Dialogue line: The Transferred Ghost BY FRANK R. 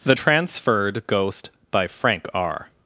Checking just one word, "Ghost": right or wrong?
right